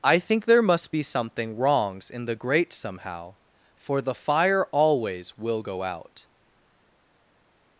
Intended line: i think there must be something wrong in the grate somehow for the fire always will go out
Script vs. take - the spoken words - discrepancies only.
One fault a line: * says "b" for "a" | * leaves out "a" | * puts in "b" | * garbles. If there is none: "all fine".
* says "wrongs" for "wrong"